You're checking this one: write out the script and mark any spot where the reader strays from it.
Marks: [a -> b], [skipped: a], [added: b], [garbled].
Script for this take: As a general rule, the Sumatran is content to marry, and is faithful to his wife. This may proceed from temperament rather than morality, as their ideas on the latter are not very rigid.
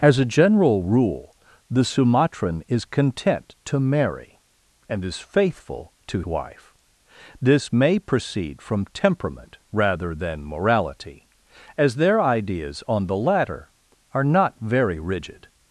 As a general rule, the Sumatran is content to marry, and is faithful to [skipped: his] wife. This may proceed from temperament rather than morality, as their ideas on the latter are not very rigid.